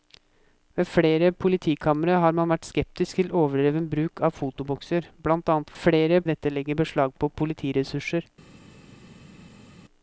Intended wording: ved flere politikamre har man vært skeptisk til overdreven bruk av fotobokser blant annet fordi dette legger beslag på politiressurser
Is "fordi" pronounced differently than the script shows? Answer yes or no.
yes